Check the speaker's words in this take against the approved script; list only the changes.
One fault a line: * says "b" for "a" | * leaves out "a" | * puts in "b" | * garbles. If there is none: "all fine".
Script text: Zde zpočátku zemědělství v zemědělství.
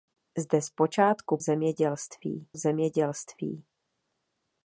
all fine